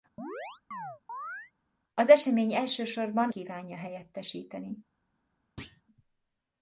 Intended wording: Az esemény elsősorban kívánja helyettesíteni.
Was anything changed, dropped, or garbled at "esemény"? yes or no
no